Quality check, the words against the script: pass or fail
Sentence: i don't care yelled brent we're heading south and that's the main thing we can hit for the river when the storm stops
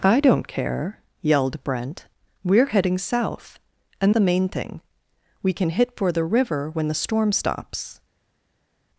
fail